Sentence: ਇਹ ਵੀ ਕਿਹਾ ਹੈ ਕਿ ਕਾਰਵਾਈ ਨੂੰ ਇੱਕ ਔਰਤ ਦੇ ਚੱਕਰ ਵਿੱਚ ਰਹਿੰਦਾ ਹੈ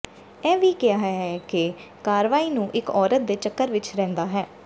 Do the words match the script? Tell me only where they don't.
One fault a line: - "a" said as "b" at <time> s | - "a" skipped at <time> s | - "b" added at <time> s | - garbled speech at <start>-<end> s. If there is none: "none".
none